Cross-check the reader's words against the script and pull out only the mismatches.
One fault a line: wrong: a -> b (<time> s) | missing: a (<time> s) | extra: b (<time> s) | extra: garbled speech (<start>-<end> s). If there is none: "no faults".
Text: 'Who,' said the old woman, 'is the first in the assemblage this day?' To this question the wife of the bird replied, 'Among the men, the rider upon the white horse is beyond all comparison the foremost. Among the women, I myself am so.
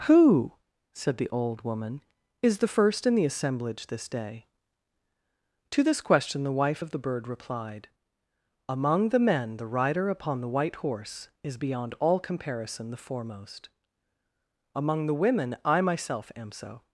no faults